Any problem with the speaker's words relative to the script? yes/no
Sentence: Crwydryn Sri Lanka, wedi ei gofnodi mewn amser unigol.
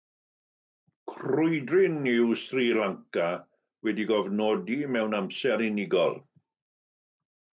yes